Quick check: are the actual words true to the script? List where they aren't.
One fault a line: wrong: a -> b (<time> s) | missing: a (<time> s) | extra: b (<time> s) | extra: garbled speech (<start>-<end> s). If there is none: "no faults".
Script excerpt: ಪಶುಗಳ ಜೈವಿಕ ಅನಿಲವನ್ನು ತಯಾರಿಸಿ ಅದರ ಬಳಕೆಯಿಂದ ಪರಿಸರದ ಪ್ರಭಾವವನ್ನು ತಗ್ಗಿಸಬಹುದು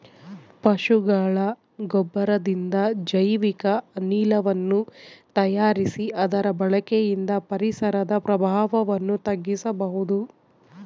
extra: ಗೊಬ್ಬರದಿಂದ (1.9 s)